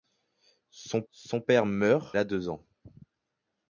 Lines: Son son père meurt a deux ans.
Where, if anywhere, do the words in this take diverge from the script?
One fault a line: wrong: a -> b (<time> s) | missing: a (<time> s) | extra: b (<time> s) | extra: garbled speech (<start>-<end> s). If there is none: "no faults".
no faults